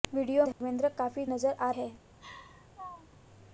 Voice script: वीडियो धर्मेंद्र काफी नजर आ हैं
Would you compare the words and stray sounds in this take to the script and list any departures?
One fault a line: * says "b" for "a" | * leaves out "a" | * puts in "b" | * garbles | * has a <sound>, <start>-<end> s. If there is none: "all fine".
* has a dropout, 0.5-0.6 s
* has a laugh, 2.2-3.2 s